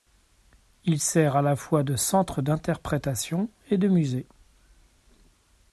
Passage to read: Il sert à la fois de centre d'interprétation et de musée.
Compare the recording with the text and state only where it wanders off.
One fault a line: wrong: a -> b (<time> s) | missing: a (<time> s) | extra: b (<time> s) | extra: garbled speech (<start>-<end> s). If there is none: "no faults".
no faults